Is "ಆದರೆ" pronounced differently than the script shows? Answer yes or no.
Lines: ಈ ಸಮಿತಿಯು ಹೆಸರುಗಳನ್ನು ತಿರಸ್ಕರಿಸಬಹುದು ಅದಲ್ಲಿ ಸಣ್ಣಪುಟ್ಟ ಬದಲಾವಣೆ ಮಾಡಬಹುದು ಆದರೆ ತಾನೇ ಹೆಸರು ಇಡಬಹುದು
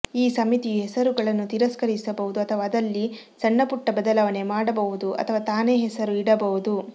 yes